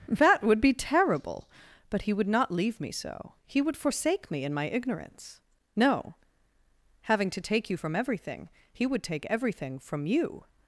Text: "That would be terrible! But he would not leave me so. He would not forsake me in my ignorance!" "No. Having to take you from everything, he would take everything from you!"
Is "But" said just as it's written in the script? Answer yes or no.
yes